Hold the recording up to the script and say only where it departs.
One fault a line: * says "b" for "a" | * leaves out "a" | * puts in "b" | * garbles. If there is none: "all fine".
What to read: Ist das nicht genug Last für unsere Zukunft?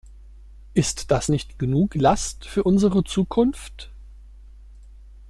all fine